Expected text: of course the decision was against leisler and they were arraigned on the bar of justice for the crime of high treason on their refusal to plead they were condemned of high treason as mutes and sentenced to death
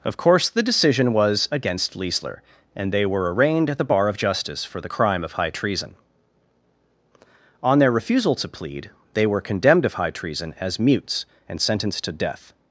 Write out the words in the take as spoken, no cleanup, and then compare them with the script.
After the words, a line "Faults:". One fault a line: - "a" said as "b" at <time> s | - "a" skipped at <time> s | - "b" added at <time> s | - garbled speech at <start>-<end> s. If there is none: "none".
of course the decision was against leisler and they were arraigned at the bar of justice for the crime of high treason on their refusal to plead they were condemned of high treason as mutes and sentenced to death
Faults:
- "on" said as "at" at 3.7 s